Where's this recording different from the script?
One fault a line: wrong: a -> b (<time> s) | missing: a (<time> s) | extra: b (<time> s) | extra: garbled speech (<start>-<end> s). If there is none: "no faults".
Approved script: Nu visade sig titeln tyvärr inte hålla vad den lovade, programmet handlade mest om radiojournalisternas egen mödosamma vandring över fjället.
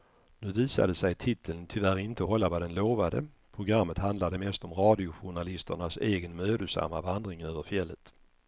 no faults